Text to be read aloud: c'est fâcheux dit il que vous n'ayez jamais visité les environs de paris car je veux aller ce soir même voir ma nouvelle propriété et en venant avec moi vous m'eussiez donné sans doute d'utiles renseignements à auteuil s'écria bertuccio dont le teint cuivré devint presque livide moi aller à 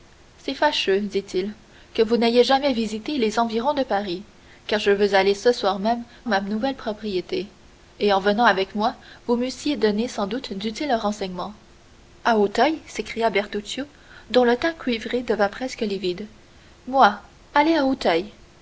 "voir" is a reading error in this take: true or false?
true